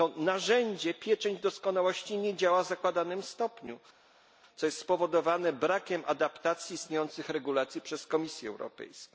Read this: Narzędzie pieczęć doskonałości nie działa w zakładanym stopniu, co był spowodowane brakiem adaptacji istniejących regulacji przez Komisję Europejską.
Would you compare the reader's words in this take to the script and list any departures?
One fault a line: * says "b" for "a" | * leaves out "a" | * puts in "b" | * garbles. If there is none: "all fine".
* says "jest" for "był"